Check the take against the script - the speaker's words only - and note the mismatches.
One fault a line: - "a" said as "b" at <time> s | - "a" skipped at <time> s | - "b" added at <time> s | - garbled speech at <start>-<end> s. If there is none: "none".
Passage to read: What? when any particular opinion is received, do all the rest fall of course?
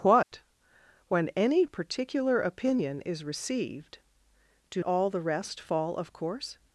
none